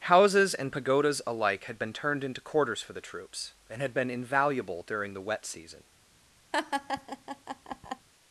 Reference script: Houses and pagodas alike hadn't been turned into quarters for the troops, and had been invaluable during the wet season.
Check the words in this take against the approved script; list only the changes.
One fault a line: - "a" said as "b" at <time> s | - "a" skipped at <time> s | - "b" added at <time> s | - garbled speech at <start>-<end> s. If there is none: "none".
- "hadn't" said as "had" at 1.6 s